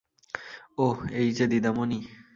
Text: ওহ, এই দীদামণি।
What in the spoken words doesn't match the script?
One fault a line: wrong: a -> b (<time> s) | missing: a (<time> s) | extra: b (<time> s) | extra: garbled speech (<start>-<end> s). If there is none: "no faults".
extra: যে (1.3 s)